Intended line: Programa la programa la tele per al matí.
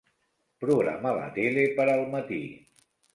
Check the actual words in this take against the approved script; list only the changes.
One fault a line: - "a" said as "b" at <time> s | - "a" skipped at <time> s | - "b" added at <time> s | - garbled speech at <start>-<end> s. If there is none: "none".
- "programa la" skipped at 1.3 s